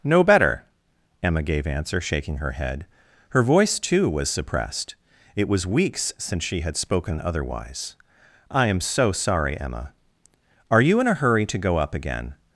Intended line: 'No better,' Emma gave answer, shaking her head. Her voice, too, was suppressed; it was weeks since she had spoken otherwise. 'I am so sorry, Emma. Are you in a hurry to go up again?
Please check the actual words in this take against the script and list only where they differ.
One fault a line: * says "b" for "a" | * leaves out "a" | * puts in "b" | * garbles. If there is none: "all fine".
all fine